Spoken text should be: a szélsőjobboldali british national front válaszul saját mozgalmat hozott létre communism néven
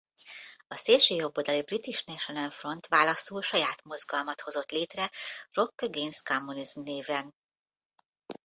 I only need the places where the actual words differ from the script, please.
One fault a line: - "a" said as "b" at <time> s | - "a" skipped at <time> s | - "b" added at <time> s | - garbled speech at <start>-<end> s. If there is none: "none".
- "rock against" added at 5.5 s